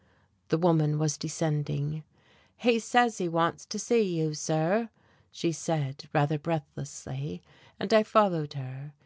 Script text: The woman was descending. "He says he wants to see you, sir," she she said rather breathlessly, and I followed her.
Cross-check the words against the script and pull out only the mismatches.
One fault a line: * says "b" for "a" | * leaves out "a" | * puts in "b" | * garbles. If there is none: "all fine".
* leaves out "she"